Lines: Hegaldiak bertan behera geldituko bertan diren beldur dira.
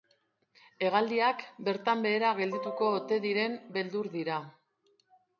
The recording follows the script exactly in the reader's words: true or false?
false